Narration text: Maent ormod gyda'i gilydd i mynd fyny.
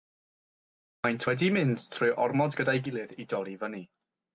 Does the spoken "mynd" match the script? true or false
false